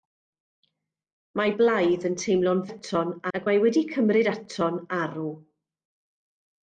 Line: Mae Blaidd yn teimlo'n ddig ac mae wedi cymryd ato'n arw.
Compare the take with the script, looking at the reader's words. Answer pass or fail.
fail